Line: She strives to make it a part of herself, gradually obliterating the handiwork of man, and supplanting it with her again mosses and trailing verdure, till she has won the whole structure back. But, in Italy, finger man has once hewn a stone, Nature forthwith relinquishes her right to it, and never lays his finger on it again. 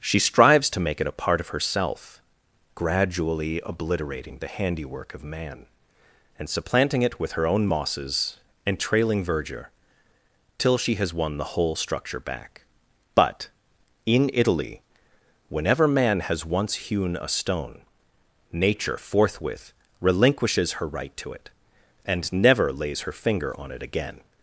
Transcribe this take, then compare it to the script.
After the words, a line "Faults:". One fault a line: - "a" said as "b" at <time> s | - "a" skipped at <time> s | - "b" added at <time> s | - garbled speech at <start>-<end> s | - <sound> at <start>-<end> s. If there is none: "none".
She strives to make it a part of herself, gradually obliterating the handiwork of man, and supplanting it with her own mosses and trailing verdure, till she has won the whole structure back. But, in Italy, whenever man has once hewn a stone, Nature forthwith relinquishes her right to it, and never lays her finger on it again.
Faults:
- "again" said as "own" at 7.5 s
- "finger" said as "whenever" at 15.5 s
- "his" said as "her" at 23.0 s